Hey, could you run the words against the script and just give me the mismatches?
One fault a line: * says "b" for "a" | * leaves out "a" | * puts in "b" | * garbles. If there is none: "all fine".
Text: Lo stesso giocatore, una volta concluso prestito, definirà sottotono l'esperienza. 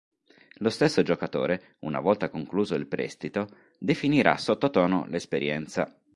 * puts in "il"